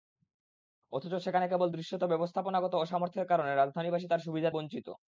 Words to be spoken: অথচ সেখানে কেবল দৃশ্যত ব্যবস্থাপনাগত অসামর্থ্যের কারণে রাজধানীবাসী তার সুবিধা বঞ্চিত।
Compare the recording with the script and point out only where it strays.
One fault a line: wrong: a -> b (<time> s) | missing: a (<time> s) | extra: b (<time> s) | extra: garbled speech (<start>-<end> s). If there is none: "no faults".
no faults